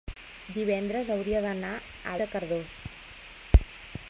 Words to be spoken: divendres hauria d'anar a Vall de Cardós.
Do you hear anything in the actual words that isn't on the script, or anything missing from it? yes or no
yes